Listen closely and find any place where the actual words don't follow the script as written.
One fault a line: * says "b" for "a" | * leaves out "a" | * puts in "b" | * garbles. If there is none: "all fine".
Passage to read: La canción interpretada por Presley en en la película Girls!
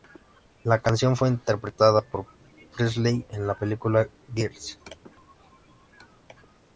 * puts in "fue"
* leaves out "en"